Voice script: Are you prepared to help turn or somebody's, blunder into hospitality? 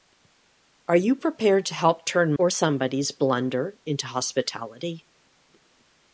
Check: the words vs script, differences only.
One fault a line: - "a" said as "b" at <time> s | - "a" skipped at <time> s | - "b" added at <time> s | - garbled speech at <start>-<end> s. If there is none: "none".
none